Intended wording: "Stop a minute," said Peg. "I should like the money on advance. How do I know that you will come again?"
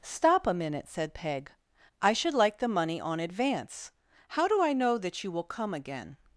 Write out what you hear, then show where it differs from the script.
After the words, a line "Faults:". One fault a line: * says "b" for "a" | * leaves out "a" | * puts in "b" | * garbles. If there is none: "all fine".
"Stop a minute," said Peg. "I should like the money on advance. How do I know that you will come again?"
Faults:
all fine